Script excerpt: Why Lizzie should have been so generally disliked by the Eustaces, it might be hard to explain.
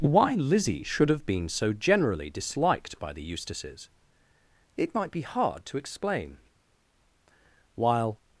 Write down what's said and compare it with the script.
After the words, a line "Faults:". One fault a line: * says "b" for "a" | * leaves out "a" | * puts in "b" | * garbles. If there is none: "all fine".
Why Lizzie should have been so generally disliked by the Eustaces, it might be hard to explain. While
Faults:
* puts in "While"